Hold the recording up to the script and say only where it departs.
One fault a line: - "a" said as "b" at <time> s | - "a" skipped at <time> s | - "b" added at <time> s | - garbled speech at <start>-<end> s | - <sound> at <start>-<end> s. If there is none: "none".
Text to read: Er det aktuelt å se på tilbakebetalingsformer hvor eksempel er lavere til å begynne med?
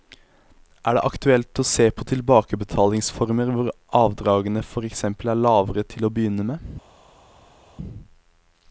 - "avdragene for" added at 4.0 s